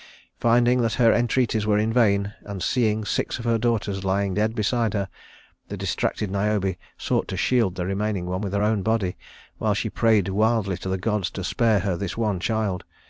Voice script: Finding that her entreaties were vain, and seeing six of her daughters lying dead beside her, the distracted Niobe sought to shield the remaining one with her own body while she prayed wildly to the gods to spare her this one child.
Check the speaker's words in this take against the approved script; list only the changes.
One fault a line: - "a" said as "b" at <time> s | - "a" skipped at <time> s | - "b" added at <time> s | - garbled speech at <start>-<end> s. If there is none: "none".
- "in" added at 1.8 s